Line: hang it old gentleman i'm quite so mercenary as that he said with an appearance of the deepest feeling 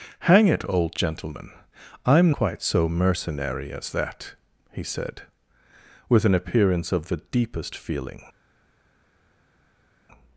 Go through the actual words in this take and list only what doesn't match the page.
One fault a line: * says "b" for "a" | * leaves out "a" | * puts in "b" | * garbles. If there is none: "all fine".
all fine